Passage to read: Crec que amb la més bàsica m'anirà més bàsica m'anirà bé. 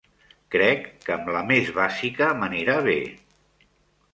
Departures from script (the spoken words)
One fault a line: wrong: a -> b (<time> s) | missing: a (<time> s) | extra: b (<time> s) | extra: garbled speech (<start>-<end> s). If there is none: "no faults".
missing: més bàsica m'anirà (2.8 s)